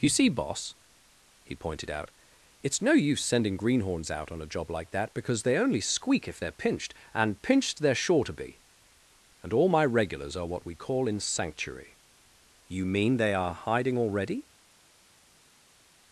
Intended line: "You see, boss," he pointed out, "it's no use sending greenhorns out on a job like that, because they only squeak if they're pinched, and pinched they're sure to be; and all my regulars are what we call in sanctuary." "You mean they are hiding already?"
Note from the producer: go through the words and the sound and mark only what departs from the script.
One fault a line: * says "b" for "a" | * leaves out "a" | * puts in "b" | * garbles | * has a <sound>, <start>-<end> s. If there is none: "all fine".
all fine